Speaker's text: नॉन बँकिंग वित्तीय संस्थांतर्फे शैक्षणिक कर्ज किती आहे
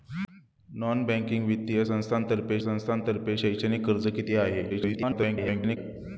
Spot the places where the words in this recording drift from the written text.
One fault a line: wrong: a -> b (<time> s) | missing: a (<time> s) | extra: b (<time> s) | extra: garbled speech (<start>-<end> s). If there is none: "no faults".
extra: संस्थांतर्फे (2.6 s)
extra: garbled speech (4.7-5.8 s)